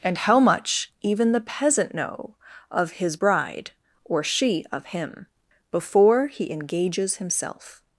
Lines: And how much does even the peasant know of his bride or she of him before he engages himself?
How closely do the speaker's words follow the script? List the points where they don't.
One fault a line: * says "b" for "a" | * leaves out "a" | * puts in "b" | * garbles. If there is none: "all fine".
* leaves out "does"